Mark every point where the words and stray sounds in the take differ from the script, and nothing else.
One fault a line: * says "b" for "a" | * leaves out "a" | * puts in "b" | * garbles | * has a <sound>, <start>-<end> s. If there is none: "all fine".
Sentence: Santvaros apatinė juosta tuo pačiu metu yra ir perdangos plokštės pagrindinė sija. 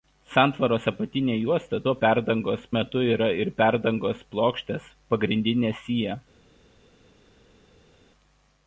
* says "perdangos" for "pačiu"